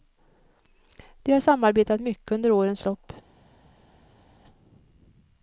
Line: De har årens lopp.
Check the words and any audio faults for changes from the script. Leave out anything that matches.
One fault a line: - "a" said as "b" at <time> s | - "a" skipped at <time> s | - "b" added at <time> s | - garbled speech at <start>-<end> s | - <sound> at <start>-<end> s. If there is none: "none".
- "samarbetat mycket under" added at 1.4 s